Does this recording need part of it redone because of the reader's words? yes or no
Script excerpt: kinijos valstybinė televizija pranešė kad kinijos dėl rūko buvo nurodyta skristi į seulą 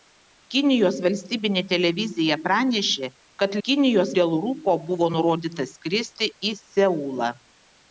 no